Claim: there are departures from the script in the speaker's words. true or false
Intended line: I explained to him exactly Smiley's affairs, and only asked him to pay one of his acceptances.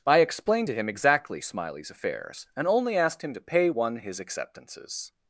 true